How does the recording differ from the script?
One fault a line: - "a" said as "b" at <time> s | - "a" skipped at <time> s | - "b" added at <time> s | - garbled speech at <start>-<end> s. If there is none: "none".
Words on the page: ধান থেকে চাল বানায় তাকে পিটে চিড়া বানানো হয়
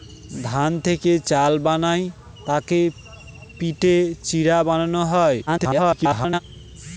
- garbled speech at 5.5-6.4 s